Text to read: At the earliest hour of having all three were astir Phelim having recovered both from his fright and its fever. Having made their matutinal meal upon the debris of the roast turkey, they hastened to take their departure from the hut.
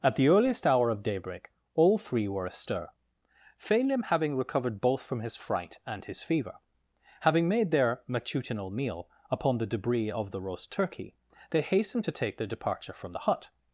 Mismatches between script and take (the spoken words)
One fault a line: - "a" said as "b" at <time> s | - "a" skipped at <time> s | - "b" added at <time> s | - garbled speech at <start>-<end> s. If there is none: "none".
- "having" said as "daybreak" at 1.0 s
- "its" said as "his" at 6.0 s